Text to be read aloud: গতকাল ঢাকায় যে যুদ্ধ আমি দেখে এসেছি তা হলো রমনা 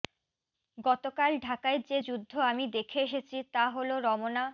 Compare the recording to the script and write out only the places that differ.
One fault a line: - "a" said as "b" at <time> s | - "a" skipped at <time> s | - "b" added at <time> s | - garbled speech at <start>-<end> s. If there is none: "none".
none